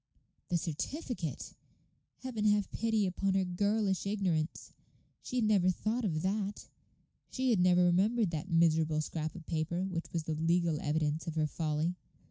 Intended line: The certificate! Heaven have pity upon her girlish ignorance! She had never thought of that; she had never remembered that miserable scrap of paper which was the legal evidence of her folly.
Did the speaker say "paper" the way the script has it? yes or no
yes